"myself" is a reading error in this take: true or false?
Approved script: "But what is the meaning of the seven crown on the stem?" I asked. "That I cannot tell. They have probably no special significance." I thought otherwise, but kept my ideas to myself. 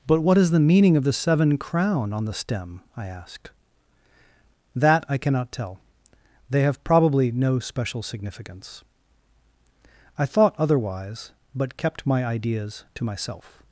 false